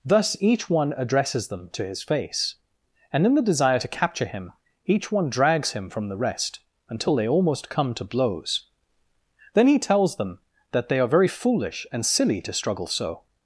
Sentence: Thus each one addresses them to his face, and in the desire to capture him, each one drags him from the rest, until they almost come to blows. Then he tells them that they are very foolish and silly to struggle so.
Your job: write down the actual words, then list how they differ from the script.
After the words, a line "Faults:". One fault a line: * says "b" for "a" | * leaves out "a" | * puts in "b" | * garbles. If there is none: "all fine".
Thus each one addresses them to his face, and in the desire to capture him, each one drags him from the rest, until they almost come to blows. Then he tells them that they are very foolish and silly to struggle so.
Faults:
all fine